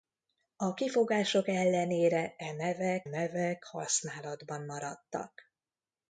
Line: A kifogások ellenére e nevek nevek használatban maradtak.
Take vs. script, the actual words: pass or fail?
pass